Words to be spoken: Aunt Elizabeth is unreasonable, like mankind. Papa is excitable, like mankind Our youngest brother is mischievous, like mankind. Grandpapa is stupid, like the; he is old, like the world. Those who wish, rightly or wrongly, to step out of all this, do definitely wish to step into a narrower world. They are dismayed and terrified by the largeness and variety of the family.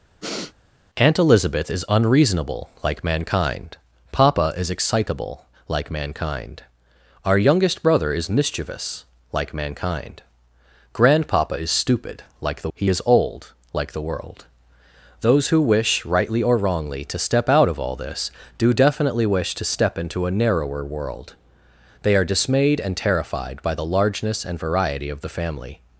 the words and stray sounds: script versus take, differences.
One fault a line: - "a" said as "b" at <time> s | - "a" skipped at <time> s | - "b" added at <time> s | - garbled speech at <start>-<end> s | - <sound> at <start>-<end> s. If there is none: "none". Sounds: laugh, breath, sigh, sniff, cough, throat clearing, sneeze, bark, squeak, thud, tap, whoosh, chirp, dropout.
- sniff at 0.2-0.5 s